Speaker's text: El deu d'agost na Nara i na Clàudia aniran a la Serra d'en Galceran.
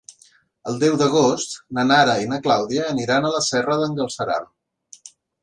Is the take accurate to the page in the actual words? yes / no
yes